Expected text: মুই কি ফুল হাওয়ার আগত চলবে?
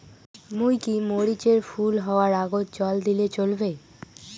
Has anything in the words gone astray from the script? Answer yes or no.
yes